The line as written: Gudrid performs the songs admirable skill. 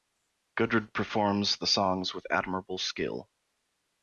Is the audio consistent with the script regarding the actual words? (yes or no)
no